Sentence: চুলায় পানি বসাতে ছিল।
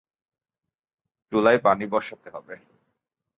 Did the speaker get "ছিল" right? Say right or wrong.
wrong